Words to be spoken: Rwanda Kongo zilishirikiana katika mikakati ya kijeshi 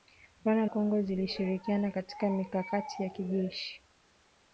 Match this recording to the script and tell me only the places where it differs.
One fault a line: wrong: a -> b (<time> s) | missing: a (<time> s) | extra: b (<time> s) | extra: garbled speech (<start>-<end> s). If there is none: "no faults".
no faults